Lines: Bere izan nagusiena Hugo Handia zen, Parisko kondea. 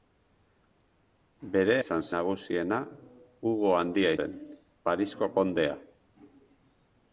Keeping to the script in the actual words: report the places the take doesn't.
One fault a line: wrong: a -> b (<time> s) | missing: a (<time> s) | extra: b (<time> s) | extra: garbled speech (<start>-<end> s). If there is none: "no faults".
no faults